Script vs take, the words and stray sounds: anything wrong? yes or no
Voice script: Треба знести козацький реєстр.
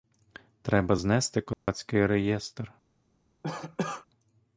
yes